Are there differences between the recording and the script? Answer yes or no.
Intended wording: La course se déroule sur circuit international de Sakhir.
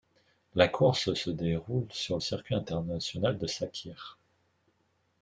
no